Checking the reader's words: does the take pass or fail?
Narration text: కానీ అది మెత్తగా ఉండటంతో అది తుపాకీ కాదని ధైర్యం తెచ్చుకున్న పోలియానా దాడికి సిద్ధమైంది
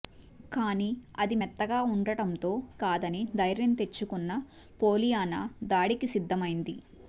fail